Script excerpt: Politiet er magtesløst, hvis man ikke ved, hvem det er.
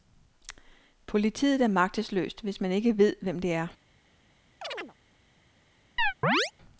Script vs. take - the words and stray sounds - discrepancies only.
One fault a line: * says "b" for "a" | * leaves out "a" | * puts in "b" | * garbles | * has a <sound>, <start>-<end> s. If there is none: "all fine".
* has a chirp, 4.6-4.9 s
* has a chirp, 6.0-6.5 s